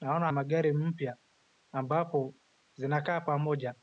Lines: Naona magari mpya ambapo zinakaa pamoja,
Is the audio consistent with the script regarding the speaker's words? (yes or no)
yes